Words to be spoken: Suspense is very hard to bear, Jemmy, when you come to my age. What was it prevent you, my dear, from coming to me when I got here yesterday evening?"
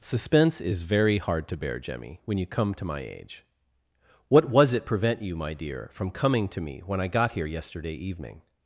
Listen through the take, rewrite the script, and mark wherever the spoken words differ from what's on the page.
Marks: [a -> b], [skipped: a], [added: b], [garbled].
Suspense is very hard to bear, Jemmy, when you come to my age. What was it prevent you, my dear, from coming to me when I got here yesterday evening?"